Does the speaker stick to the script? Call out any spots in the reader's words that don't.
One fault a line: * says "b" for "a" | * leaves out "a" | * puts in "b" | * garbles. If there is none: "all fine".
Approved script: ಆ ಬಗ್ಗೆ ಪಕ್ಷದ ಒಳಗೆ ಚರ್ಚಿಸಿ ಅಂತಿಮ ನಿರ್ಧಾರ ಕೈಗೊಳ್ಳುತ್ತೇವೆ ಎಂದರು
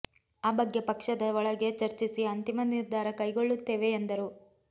all fine